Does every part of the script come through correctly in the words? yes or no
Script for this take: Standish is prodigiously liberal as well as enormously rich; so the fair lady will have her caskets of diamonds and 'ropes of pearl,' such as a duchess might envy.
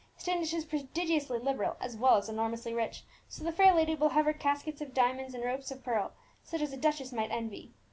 yes